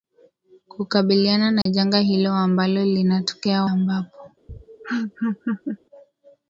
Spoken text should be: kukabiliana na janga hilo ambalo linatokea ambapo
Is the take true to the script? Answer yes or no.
yes